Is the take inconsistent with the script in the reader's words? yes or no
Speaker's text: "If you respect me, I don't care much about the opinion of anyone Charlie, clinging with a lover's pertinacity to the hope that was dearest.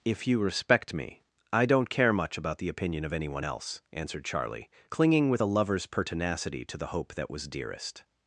yes